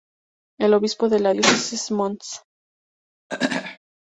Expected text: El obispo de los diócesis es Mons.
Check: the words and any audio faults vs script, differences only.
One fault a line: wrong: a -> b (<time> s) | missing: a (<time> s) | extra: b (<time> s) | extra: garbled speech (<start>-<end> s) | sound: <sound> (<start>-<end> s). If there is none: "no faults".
wrong: los -> la (1.2 s)
sound: throat clearing (3.3-3.8 s)